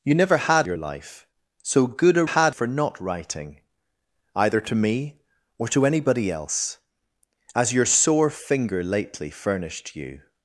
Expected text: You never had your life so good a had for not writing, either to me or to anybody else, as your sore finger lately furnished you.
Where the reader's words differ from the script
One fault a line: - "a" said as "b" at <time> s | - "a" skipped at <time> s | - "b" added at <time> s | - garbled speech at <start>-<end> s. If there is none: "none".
none